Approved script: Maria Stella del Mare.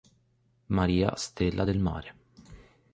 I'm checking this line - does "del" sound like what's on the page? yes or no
yes